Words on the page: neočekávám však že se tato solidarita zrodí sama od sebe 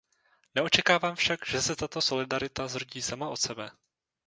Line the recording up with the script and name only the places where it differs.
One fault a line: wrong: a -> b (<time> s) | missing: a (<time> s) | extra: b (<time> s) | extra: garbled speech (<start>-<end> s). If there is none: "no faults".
no faults